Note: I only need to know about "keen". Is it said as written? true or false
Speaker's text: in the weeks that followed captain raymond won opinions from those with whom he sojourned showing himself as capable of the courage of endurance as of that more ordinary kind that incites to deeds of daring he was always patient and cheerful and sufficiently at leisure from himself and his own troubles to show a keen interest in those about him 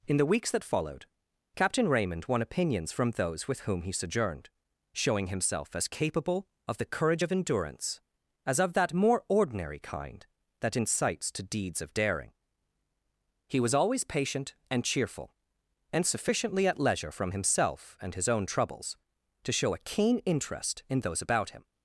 true